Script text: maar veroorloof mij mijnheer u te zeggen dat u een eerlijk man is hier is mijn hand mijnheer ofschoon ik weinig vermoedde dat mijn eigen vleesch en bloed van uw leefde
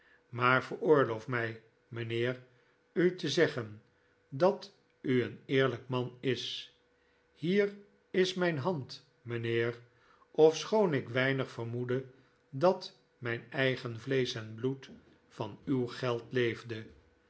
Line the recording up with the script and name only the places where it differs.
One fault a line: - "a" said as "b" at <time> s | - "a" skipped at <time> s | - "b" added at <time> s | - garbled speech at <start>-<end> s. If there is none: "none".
- "geld" added at 15.9 s